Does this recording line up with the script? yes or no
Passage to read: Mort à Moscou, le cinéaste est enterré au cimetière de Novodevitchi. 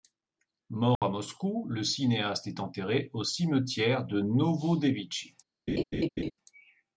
yes